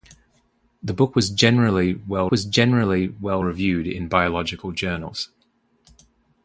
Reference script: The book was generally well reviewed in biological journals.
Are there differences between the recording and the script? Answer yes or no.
yes